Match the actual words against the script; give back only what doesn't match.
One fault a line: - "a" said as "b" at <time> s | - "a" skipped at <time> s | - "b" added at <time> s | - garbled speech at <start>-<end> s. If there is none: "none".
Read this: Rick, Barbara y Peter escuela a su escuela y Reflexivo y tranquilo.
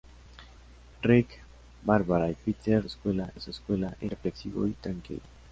none